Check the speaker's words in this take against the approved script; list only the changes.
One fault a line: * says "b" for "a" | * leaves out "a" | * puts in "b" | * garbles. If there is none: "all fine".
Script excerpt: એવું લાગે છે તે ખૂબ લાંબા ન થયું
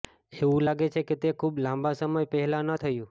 * puts in "કે"
* puts in "સમય પહેલા"